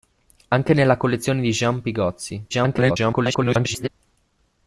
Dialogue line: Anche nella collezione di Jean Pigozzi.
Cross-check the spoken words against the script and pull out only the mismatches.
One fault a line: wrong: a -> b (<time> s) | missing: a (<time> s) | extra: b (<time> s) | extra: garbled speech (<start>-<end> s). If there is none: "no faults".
extra: garbled speech (2.5-3.9 s)